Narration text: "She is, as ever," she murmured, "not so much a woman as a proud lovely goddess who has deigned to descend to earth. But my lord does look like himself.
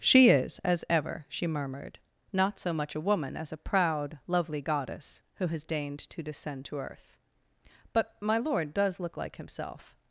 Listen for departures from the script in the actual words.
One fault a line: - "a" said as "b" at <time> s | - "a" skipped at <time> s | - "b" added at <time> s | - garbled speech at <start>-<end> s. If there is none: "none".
none